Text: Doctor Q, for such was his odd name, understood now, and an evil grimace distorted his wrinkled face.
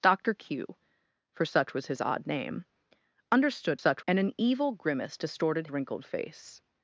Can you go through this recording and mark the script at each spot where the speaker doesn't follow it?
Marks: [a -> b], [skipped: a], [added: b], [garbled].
Doctor Q, for such was his odd name, understood [now, -> such] and an evil grimace distorted [skipped: his] wrinkled face.